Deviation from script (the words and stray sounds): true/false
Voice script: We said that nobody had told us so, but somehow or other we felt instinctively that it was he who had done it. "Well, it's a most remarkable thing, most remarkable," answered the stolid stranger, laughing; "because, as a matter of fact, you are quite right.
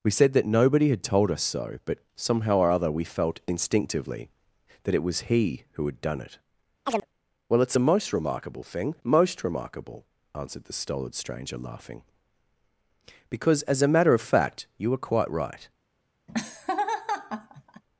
true